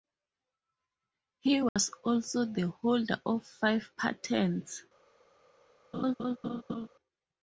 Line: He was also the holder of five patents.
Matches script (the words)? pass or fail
pass